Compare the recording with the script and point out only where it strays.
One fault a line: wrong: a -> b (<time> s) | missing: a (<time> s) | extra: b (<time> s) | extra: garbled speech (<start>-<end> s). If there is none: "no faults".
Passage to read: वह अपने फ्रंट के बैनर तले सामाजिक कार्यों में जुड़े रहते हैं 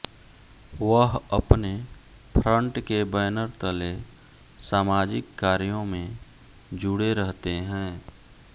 no faults